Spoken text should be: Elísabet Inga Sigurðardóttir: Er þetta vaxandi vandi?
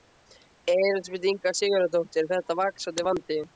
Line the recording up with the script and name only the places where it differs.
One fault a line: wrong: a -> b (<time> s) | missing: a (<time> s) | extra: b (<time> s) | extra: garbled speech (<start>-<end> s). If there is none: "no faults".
no faults